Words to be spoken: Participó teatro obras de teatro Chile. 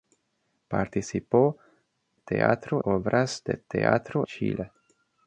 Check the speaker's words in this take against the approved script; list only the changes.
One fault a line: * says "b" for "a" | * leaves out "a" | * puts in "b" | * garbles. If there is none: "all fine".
all fine